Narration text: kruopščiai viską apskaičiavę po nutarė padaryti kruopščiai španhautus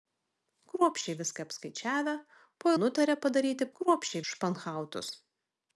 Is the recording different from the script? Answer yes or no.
no